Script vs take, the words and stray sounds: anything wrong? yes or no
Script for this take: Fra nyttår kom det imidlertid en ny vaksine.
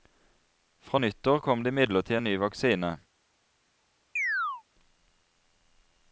yes